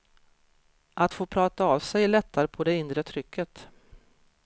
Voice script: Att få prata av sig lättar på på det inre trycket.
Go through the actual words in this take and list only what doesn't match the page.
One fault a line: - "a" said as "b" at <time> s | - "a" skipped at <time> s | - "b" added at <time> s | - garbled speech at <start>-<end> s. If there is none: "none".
- "på" skipped at 2.6 s